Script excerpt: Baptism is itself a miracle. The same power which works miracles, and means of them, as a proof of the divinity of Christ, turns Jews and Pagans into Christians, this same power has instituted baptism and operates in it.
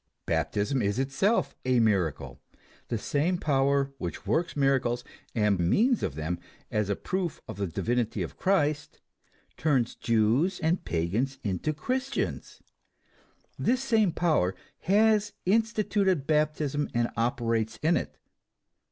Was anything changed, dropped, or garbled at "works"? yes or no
no